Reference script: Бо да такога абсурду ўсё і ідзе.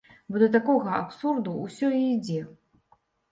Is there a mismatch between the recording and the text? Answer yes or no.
no